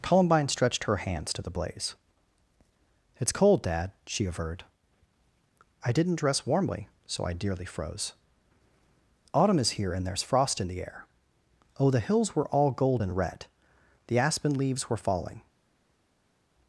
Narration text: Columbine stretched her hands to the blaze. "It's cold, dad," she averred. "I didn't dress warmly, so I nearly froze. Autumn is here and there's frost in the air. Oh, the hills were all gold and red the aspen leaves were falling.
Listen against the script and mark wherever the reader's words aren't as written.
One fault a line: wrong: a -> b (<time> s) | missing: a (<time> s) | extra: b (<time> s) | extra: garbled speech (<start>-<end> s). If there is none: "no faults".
wrong: nearly -> dearly (7.3 s)